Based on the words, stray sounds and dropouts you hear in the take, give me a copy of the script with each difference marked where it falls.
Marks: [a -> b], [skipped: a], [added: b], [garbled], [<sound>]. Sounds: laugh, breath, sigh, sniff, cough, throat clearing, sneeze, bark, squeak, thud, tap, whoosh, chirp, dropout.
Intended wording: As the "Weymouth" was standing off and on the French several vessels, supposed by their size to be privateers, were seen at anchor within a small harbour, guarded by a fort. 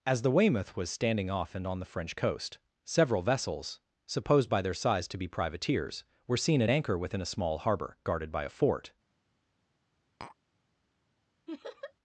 As the "Weymouth" was standing off and on the French [added: coast] several vessels, supposed by their size to be privateers, were seen at anchor within a small harbour, guarded by a fort. [tap] [laugh]